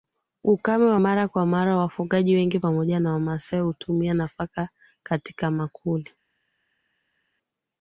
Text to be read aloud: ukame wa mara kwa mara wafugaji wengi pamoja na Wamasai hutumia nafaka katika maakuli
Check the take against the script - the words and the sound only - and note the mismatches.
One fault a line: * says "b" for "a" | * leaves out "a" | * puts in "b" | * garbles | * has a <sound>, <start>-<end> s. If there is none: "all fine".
all fine